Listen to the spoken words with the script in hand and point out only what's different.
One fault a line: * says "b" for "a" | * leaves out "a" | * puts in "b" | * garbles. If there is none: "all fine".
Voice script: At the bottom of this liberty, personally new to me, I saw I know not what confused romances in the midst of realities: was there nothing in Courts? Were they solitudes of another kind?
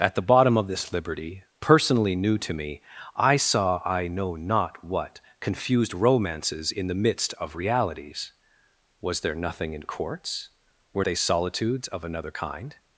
all fine